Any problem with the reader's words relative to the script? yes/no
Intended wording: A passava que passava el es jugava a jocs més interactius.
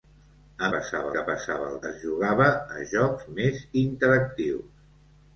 no